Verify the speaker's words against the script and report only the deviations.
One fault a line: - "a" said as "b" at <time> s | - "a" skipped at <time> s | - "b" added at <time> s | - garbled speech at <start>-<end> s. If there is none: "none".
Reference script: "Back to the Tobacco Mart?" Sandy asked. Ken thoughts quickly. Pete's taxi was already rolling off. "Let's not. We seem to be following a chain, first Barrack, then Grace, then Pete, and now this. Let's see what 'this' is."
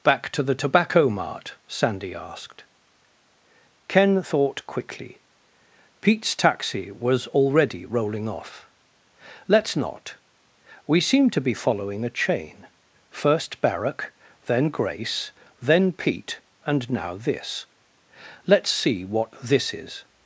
- "thoughts" said as "thought" at 4.2 s